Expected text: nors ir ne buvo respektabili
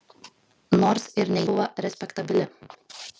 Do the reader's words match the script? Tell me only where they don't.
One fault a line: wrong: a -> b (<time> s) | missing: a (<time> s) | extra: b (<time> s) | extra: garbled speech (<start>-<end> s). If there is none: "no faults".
no faults